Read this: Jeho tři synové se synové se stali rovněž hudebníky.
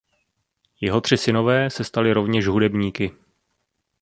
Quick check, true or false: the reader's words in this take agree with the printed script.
false